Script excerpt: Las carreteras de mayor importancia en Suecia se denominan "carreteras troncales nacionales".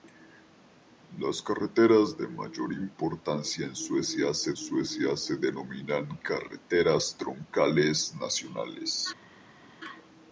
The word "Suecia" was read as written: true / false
true